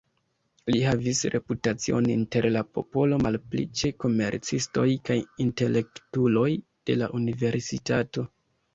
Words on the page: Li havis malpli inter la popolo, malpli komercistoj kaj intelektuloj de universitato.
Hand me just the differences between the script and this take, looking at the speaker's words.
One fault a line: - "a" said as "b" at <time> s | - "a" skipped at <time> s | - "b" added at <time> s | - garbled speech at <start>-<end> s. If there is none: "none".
- "malpli" said as "reputacion" at 1.4 s
- "ĉe" added at 3.8 s
- "la" added at 7.0 s